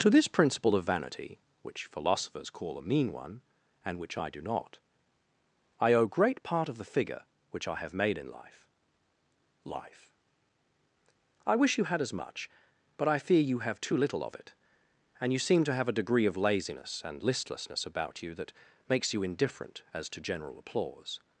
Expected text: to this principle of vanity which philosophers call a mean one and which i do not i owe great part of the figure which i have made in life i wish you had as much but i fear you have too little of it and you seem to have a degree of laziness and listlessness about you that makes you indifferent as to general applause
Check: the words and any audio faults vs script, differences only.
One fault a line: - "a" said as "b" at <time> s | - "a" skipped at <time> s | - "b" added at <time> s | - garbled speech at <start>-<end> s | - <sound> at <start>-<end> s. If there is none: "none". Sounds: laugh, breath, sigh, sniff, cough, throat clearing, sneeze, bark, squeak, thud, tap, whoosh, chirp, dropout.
- "life" added at 9.6 s